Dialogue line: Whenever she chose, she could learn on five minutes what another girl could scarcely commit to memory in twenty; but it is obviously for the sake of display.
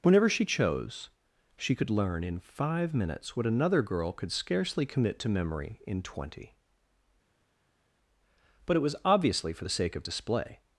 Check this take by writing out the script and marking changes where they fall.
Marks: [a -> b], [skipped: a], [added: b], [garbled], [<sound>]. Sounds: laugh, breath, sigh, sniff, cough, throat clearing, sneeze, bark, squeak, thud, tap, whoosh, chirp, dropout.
Whenever she chose, she could learn [on -> in] five minutes what another girl could scarcely commit to memory in twenty; but it [is -> was] obviously for the sake of display.